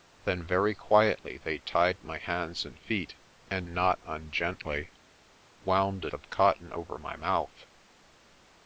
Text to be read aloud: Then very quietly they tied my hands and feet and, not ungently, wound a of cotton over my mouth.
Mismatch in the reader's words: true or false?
false